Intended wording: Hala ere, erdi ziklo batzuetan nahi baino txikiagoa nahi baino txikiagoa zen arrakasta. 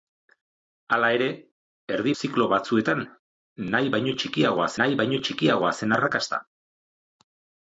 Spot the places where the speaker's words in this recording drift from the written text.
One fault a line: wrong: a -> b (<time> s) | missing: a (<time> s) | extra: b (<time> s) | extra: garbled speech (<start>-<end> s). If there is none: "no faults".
no faults